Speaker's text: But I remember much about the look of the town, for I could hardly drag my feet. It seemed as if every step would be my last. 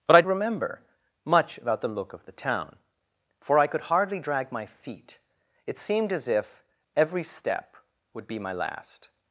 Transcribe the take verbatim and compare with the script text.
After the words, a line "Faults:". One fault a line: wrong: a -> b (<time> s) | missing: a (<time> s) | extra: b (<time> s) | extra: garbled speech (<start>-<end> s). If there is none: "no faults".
But I remember much about the look of the town, for I could hardly drag my feet. It seemed as if every step would be my last.
Faults:
no faults